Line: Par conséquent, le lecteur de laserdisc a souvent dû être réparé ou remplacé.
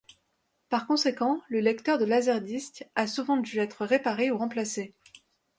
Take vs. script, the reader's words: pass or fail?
pass